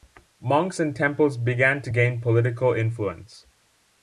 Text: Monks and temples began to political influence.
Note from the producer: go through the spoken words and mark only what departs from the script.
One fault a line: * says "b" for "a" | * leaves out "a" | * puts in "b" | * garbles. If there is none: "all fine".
* puts in "gain"